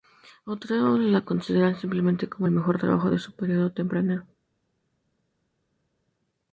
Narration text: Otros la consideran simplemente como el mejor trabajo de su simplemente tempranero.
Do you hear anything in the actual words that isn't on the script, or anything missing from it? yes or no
yes